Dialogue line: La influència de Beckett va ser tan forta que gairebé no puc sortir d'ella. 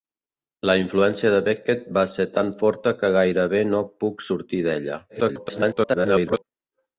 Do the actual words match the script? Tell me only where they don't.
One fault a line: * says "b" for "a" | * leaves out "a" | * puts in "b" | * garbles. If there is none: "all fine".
* garbles